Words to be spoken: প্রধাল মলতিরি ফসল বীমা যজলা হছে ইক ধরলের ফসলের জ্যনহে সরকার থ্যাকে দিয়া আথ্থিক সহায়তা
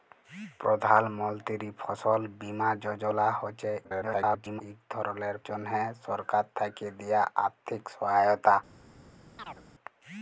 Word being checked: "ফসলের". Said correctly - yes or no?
no